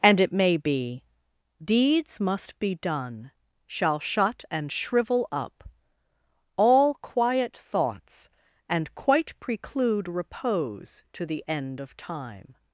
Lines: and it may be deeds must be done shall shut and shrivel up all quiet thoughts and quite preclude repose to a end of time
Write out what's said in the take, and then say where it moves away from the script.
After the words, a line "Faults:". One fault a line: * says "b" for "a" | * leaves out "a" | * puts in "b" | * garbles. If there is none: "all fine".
and it may be deeds must be done shall shut and shrivel up all quiet thoughts and quite preclude repose to the end of time
Faults:
* says "the" for "a"